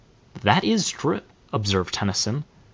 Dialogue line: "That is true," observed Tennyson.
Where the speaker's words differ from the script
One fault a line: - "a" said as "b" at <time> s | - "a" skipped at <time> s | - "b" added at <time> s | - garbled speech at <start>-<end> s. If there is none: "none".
none